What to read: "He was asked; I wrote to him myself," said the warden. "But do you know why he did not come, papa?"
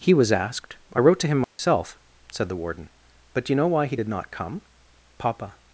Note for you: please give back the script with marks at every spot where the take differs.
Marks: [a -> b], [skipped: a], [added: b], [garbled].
"He was asked; I wrote to him myself," said the warden. "But do you know why he did not come, papa?"